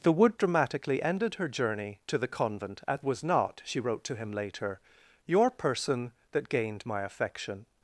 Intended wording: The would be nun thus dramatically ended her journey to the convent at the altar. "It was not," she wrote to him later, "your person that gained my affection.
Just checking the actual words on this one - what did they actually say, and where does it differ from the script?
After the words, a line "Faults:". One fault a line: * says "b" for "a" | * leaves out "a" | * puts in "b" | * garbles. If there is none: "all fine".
The would dramatically ended her journey to the convent at was not," she wrote to him later, "your person that gained my affection.
Faults:
* leaves out "be nun thus"
* leaves out "the altar It"